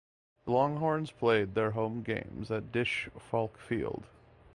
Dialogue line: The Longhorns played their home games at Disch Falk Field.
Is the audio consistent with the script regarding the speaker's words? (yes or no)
yes